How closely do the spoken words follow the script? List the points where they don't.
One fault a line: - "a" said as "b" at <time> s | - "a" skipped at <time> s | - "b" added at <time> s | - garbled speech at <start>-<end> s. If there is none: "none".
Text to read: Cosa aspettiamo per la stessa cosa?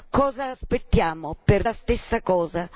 none